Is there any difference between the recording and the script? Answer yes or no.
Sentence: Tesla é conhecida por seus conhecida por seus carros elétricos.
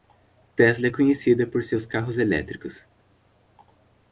yes